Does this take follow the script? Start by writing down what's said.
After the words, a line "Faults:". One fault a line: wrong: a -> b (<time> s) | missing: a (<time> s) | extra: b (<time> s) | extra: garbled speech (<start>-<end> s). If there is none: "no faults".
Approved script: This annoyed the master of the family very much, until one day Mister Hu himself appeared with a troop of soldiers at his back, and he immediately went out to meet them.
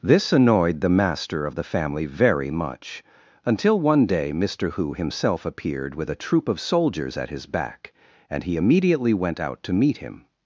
This annoyed the master of the family very much, until one day Mister Hu himself appeared with a troop of soldiers at his back, and he immediately went out to meet him.
Faults:
wrong: them -> him (10.0 s)